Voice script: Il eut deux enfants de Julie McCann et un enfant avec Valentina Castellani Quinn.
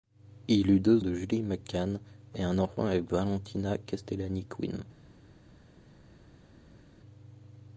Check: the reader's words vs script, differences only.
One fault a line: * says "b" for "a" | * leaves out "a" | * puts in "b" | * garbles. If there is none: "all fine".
* leaves out "enfants"